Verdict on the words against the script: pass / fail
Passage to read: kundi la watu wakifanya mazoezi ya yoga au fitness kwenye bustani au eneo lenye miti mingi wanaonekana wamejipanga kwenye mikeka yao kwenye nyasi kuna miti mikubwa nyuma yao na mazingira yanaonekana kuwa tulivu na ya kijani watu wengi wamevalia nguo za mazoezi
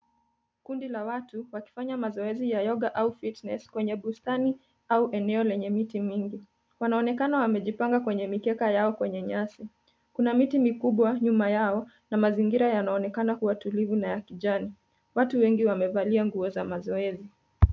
pass